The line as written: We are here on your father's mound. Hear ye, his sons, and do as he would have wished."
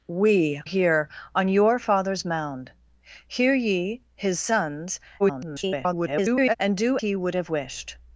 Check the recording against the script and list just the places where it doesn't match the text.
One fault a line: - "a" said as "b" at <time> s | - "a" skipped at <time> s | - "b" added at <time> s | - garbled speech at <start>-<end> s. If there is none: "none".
- "are" skipped at 0.6 s
- garbled speech at 5.2-6.6 s
- "as" skipped at 7.0 s